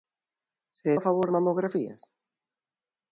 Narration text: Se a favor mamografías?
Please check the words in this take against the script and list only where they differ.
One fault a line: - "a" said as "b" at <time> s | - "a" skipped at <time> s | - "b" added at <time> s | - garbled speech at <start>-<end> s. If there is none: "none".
none